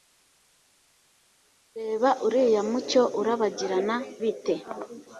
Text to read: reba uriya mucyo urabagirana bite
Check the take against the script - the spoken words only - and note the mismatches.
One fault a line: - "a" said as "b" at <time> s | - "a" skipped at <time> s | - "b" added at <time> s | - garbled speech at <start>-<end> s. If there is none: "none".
none